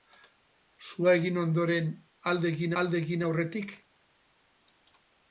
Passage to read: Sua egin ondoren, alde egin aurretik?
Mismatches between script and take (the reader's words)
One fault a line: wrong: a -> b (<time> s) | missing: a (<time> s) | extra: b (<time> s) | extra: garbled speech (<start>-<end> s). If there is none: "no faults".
extra: alde egin (2.8 s)